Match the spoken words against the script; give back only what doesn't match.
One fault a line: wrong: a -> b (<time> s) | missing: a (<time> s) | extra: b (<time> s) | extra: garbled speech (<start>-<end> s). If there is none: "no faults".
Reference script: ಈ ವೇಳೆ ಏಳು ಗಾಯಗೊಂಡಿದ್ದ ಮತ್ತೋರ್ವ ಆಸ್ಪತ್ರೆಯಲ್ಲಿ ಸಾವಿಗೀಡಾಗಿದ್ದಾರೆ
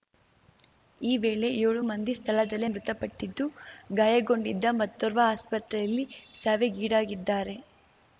extra: ಮಂದಿ ಸ್ಥಳದಲ್ಲೇ ಮೃತಪಟ್ಟಿದ್ದು (1.9 s)